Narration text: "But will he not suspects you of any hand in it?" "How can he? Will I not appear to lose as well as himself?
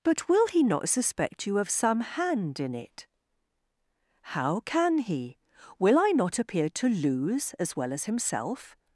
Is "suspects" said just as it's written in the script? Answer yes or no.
no